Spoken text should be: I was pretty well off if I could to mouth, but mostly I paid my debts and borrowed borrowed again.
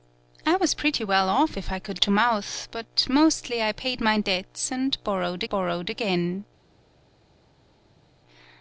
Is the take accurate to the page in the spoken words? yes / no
yes